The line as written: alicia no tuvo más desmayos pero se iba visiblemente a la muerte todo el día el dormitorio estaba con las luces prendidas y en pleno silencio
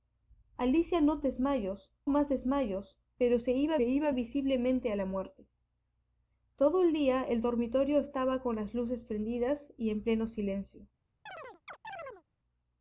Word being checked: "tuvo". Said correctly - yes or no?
no